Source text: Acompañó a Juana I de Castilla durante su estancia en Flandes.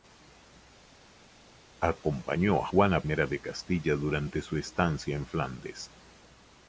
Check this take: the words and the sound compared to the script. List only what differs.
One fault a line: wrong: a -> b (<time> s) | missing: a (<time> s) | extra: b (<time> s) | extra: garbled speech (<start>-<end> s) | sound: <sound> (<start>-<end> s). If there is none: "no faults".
missing: I (3.0 s)